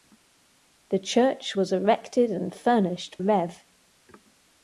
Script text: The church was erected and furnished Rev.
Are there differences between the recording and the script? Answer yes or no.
no